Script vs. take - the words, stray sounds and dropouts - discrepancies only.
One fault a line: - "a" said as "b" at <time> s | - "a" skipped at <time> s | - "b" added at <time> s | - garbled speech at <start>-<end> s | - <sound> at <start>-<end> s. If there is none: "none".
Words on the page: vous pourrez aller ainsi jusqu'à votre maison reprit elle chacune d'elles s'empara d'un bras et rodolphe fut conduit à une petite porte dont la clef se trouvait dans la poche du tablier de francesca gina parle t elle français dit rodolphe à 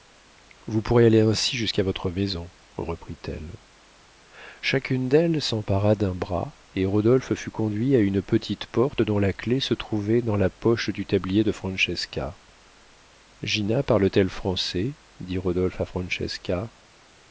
none